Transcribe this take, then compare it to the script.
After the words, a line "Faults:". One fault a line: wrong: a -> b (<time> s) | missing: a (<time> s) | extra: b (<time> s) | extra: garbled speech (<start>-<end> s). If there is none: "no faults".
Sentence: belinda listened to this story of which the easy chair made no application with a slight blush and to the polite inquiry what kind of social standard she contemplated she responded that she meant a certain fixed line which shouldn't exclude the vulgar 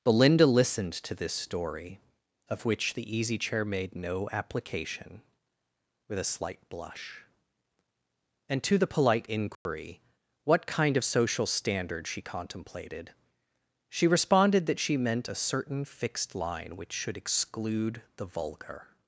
belinda listened to this story of which the easy chair made no application with a slight blush and to the polite inquiry what kind of social standard she contemplated she responded that she meant a certain fixed line which should exclude the vulgar
Faults:
wrong: shouldn't -> should (16.9 s)